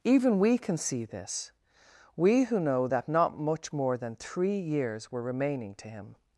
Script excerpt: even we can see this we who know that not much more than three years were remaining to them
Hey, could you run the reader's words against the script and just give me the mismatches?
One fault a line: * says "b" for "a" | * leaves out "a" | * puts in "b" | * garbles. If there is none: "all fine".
* says "him" for "them"